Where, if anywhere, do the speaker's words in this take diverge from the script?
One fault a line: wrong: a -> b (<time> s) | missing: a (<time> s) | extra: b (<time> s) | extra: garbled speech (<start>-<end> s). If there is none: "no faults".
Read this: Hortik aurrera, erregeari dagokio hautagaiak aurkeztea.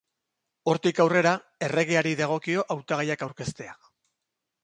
no faults